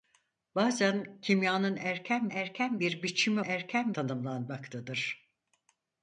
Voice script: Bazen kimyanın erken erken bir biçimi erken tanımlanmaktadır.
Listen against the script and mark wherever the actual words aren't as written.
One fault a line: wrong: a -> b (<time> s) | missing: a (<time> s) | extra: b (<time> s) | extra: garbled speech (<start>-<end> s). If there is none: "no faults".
no faults